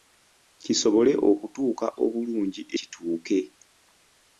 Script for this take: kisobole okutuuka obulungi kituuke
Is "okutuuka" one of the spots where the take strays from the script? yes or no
no